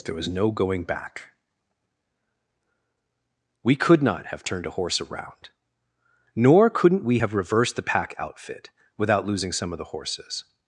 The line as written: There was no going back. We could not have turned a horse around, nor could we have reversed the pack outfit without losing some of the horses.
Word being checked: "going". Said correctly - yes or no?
yes